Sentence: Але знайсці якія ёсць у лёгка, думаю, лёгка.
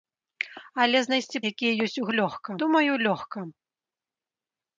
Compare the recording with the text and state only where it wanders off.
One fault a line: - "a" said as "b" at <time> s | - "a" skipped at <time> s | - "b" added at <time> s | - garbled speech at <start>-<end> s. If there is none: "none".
none